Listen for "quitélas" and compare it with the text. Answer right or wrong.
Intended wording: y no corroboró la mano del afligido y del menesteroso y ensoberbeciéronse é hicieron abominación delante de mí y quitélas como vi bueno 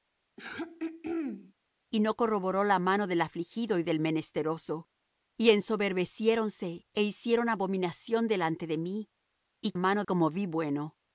wrong